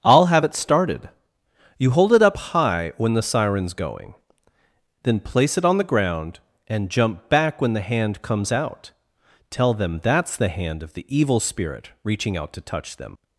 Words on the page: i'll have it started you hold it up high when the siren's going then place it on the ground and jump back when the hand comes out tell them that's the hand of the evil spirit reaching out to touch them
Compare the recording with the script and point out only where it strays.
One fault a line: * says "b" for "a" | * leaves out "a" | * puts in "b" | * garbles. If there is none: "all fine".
all fine